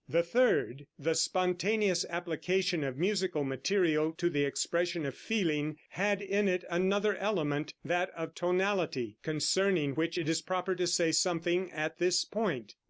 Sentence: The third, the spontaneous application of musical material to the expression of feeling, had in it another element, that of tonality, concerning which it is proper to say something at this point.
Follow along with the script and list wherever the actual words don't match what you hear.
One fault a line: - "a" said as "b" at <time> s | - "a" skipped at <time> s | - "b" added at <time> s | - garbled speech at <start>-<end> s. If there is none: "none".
none